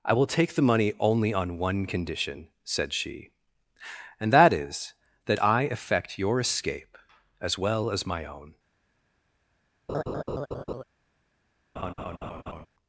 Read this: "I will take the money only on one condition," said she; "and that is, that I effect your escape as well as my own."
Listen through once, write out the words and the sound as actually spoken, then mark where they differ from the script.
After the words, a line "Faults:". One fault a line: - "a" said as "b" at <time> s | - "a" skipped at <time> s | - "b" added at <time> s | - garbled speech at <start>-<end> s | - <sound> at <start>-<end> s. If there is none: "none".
"I will take the money only on one condition," said she; "and that is, that I effect your escape as well as my own."
Faults:
- laugh at 9.9-10.8 s
- laugh at 11.8-12.7 s